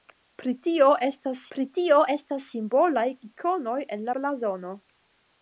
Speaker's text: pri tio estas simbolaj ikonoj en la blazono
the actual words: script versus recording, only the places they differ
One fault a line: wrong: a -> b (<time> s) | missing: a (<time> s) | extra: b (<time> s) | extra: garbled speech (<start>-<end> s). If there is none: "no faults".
extra: pri tio estas (1.6 s)
missing: la (4.1 s)